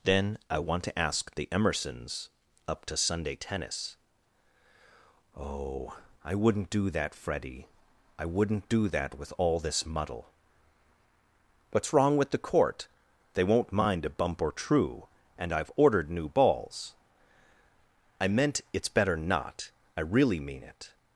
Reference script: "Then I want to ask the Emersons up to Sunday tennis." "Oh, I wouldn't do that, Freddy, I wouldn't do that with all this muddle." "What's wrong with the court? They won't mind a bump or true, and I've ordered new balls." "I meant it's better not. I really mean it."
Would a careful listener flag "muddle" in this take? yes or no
no